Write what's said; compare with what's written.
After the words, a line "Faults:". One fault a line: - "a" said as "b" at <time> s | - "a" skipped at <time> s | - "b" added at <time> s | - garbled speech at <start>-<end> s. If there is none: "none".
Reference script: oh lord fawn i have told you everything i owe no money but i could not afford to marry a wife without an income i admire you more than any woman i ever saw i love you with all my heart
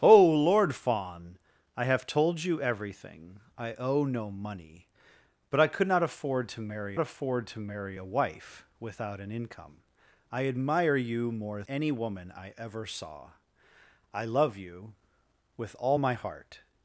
oh lord fawn i have told you everything i owe no money but i could not afford to marry afford to marry a wife without an income i admire you more any woman i ever saw i love you with all my heart
Faults:
- "afford to marry" added at 7.0 s
- "than" skipped at 11.6 s